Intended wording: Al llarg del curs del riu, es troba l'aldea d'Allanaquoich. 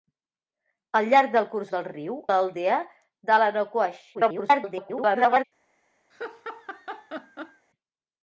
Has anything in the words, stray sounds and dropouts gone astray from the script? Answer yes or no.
yes